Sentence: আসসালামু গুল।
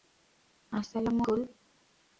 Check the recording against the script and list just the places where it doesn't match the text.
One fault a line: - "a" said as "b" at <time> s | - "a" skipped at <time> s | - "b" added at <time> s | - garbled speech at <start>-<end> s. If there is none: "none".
none